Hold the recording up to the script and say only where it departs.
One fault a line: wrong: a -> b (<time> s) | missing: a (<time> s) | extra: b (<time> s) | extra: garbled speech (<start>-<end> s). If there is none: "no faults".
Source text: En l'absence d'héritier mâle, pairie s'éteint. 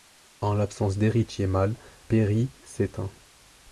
no faults